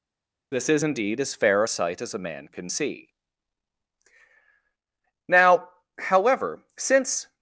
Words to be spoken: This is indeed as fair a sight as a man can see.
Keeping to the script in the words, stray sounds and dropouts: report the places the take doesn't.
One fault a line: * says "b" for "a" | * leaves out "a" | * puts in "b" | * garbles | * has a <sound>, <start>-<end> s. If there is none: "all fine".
* puts in "Now however since"